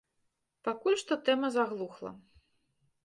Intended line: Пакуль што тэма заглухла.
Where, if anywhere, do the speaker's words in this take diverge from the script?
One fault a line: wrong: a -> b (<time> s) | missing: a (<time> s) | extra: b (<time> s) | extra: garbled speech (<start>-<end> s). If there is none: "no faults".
no faults